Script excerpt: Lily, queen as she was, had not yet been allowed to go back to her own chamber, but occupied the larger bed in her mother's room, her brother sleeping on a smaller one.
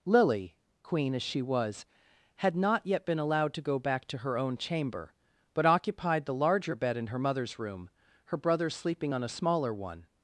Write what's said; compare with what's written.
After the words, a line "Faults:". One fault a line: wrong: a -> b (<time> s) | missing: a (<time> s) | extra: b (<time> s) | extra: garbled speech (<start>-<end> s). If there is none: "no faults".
Lily, queen as she was, had not yet been allowed to go back to her own chamber, but occupied the larger bed in her mother's room, her brother sleeping on a smaller one.
Faults:
no faults